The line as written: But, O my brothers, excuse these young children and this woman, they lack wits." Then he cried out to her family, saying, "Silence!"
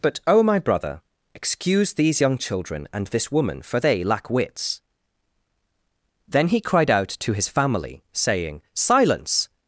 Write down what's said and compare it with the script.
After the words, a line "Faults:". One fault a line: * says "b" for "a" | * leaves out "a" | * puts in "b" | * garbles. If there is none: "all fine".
But, O my brother, excuse these young children and this woman, for they lack wits." Then he cried out to his family, saying, "Silence!"
Faults:
* says "brother" for "brothers"
* puts in "for"
* says "his" for "her"